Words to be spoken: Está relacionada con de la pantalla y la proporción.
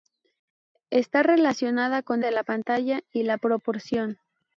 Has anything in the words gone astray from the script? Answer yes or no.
no